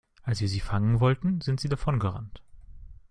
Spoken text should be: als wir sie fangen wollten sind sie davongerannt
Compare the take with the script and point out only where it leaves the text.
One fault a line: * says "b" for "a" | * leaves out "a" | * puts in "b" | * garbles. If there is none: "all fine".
all fine